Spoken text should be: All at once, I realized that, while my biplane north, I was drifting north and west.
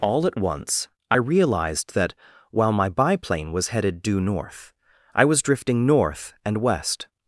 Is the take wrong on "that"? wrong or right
right